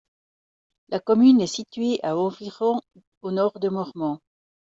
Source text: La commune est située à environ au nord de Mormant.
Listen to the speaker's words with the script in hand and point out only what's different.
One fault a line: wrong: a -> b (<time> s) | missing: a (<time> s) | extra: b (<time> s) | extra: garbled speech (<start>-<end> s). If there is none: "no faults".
no faults